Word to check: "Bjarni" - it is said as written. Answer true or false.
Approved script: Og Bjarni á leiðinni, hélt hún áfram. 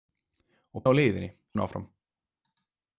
false